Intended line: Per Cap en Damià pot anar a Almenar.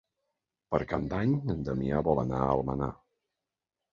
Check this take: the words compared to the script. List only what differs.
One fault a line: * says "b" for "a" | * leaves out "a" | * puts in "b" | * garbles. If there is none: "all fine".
* puts in "d'Any"
* says "vol" for "pot"